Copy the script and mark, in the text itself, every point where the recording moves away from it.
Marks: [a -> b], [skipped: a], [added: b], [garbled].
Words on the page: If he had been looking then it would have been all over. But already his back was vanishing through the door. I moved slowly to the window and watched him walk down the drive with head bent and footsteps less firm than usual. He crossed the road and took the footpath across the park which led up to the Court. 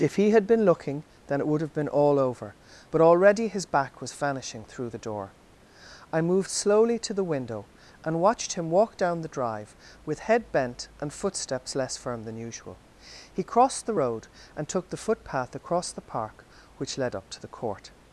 If he had been looking then it would have been all over. But already his back was vanishing through the door. I moved slowly to the window and watched him walk down the drive with head bent and footsteps less firm than usual. He crossed the road and took the footpath across the park which led up to the Court.